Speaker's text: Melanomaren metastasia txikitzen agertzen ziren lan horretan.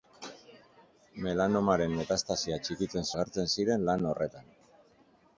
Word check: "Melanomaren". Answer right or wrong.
right